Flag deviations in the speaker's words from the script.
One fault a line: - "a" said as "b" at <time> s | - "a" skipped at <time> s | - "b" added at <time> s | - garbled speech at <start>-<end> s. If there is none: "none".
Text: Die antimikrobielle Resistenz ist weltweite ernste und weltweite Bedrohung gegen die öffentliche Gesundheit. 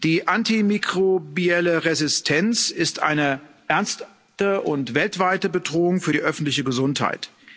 - "weltweite" said as "eine" at 3.0 s
- "gegen" said as "für" at 6.0 s